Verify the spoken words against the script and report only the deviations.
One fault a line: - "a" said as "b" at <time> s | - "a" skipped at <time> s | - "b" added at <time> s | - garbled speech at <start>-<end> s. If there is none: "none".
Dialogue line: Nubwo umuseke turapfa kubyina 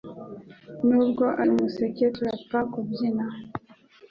none